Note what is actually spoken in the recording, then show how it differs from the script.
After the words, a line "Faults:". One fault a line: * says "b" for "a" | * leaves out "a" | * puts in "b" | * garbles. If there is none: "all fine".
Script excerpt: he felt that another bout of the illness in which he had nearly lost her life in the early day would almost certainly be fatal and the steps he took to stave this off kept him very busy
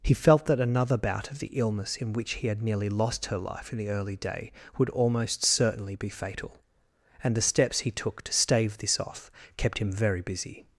he felt that another bout of the illness in which he had nearly lost her life in the early day would almost certainly be fatal and the steps he took to stave this off kept him very busy
Faults:
all fine